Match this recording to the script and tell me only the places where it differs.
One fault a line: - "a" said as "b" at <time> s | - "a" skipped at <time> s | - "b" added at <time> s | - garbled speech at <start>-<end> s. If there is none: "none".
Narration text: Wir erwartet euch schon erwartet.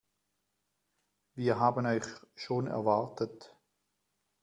- "erwartet" said as "haben" at 1.6 s